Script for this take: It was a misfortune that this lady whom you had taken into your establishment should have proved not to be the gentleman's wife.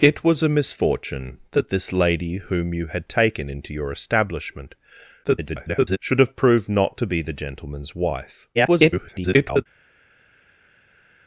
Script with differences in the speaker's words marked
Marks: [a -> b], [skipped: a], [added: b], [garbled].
It was a misfortune that this lady whom you had taken into your establishment [garbled] should have proved not to be the gentleman's wife. [garbled]